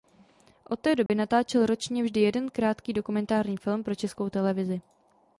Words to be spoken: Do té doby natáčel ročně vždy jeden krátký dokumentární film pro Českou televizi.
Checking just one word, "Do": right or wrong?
wrong